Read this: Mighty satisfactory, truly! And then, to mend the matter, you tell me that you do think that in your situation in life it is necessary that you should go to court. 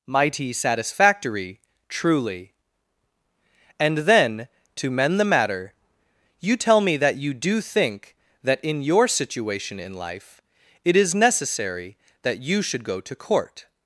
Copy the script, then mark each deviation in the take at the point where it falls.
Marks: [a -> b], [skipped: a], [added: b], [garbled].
Mighty satisfactory, truly! And then, to mend the matter, you tell me that you do think that in your situation in life it is necessary that you should go to court.